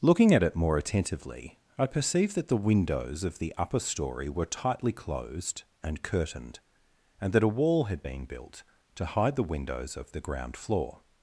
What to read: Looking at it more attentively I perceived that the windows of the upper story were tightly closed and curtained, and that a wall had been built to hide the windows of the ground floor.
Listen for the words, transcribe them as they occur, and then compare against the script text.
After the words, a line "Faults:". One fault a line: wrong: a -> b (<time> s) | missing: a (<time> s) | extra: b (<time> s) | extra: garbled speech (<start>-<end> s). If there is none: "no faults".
Looking at it more attentively I perceived that the windows of the upper story were tightly closed and curtained, and that a wall had been built to hide the windows of the ground floor.
Faults:
no faults